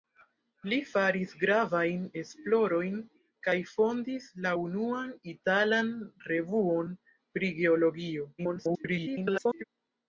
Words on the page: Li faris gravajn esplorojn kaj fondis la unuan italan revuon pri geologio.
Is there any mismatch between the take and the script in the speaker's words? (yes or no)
yes